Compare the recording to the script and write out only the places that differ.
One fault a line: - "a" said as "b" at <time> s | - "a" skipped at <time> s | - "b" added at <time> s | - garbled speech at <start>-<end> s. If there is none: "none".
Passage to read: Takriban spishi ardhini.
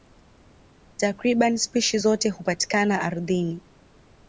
- "zote hupatikana" added at 2.0 s